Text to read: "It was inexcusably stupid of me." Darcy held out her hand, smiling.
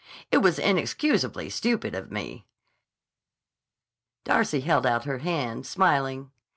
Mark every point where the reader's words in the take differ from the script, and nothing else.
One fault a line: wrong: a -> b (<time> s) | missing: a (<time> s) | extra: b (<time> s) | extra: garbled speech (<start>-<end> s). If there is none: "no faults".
no faults